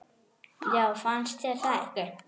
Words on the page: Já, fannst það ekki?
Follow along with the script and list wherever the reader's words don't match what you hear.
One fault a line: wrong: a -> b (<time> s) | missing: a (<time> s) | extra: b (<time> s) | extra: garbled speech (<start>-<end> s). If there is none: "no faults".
extra: þér (1.4 s)